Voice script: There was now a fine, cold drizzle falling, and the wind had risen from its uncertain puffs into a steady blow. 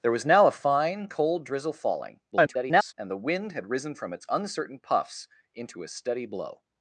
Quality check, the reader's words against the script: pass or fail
fail